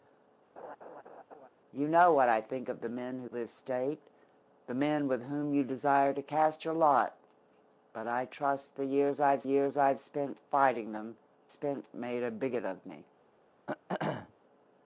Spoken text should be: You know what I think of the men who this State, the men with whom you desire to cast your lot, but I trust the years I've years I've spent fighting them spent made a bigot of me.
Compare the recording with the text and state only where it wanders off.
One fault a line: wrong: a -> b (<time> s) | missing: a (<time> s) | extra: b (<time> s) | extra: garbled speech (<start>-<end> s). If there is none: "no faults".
no faults